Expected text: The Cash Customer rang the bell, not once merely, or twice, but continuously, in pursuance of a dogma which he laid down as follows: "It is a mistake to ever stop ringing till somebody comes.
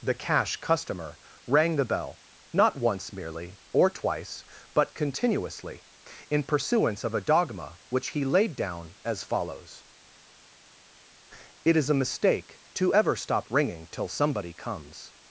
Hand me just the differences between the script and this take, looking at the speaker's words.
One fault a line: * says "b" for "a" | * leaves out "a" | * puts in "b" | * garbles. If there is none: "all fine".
all fine